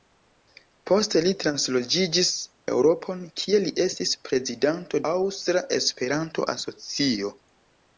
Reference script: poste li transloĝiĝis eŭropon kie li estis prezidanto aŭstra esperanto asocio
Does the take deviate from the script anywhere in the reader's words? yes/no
no